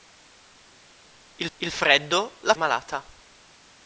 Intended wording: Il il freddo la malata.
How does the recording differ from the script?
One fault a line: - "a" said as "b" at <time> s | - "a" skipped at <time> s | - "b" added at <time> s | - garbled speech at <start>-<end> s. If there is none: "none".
none